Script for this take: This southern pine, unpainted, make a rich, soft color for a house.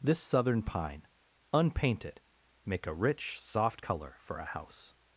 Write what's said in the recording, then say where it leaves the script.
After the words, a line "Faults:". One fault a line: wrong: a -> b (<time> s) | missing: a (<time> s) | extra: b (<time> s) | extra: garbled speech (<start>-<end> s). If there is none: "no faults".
This southern pine, unpainted, make a rich, soft color for a house.
Faults:
no faults